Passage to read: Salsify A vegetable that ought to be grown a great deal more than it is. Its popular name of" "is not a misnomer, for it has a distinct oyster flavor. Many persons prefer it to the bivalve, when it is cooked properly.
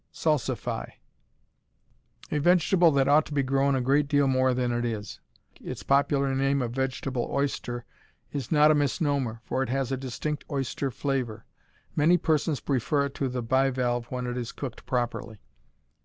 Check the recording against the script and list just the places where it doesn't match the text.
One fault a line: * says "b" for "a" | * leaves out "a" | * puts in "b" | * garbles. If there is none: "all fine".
* puts in "vegetable oyster"